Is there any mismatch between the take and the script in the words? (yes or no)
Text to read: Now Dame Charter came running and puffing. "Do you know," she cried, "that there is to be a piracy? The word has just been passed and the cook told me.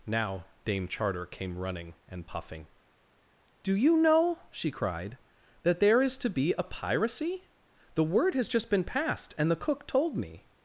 no